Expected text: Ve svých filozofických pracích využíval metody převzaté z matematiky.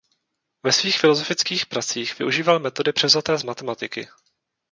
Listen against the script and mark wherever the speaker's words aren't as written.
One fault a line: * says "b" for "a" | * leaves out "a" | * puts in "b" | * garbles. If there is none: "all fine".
all fine